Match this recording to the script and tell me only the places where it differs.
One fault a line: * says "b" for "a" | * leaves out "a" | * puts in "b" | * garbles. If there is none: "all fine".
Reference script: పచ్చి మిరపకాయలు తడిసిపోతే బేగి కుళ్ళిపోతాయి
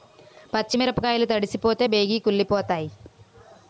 all fine